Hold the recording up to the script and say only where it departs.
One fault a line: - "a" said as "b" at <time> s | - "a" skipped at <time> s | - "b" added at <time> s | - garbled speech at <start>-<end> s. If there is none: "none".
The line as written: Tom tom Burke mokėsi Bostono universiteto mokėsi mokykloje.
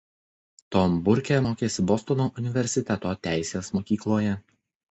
- "tom" skipped at 0.9 s
- "mokėsi" said as "teisės" at 3.3 s